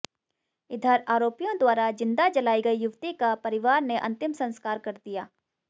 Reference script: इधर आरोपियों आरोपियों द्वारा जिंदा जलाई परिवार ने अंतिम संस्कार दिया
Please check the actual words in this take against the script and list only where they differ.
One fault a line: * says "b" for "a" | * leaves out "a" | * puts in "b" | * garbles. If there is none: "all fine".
* leaves out "आरोपियों"
* puts in "गई युवती का"
* puts in "कर"